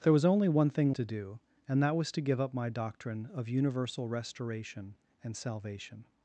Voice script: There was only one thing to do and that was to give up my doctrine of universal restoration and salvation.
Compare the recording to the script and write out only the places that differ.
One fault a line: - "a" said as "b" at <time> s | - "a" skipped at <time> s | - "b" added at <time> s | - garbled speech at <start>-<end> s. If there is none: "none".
none